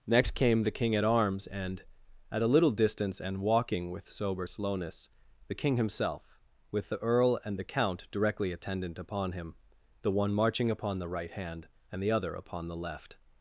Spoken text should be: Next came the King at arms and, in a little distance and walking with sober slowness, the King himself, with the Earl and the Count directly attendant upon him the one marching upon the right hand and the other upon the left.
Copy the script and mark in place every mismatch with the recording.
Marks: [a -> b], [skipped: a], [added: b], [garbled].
Next came the King at arms and, [in -> at] a little distance and walking with sober slowness, the King himself, with the Earl and the Count directly attendant upon him the one marching upon the right hand and the other upon the left.